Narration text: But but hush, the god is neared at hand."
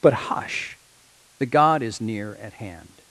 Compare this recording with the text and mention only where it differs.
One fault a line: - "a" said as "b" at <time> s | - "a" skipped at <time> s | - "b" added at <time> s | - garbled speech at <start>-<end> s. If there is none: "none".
- "but" skipped at 0.1 s
- "neared" said as "near" at 2.0 s